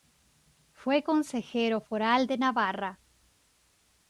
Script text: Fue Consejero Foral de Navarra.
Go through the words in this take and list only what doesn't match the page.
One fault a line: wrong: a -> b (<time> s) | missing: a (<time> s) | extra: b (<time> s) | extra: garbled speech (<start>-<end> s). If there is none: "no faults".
no faults